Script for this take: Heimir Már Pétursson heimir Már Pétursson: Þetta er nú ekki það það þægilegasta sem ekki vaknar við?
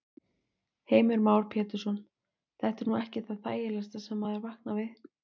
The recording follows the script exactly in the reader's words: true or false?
false